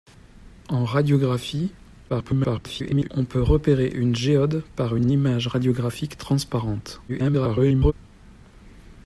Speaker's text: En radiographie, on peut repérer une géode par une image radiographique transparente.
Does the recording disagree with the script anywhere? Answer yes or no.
yes